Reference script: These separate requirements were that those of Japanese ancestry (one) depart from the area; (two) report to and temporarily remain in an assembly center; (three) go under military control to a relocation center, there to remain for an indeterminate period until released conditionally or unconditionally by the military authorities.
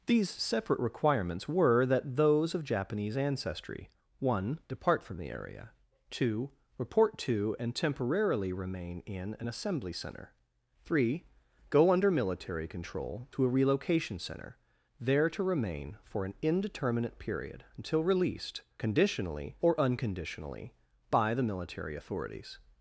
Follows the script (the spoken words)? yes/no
yes